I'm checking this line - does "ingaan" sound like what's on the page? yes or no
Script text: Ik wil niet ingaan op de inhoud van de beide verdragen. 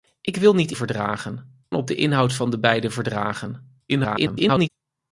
no